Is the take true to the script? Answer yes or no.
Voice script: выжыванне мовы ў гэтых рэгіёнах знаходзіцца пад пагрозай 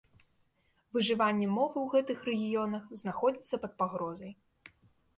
yes